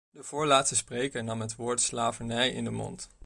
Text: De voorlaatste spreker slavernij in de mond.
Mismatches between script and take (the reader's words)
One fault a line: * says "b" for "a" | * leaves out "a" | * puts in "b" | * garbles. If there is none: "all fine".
* puts in "nam het woord"